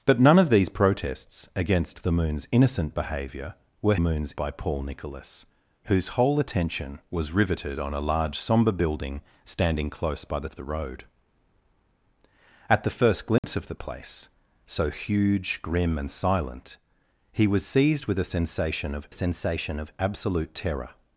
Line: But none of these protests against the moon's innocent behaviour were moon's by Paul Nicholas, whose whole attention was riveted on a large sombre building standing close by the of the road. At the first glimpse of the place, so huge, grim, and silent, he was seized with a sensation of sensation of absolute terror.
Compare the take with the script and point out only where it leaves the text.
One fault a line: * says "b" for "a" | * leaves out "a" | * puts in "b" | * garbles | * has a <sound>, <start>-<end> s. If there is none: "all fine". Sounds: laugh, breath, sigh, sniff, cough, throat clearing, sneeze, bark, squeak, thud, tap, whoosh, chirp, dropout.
* has a dropout, 13.4-13.4 s